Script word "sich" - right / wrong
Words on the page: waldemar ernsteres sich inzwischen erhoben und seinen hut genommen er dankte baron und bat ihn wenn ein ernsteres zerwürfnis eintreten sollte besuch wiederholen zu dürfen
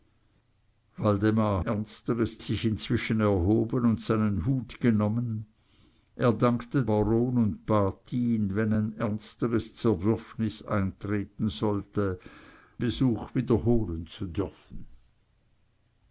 right